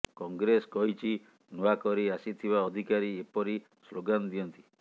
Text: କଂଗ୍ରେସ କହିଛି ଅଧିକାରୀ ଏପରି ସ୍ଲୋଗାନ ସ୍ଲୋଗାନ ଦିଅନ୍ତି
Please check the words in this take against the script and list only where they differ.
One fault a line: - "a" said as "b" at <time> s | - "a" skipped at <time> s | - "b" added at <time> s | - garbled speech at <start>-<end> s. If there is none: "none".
- "ନୂଆ କରି ଆସିଥିବା" added at 1.5 s
- "ସ୍ଲୋଗାନ" skipped at 4.4 s